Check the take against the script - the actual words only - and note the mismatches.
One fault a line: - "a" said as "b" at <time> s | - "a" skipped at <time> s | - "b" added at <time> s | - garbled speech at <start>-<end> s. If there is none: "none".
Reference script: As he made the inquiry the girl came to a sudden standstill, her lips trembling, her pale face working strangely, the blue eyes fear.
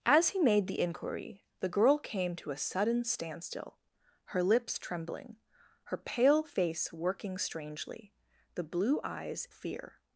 none